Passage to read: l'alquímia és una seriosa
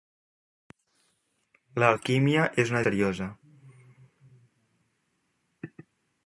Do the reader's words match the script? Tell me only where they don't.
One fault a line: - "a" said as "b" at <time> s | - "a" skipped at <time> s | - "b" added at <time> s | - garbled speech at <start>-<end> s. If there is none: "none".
none